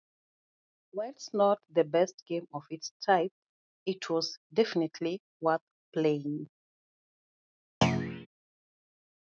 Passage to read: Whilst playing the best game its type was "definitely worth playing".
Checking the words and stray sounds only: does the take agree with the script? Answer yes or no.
no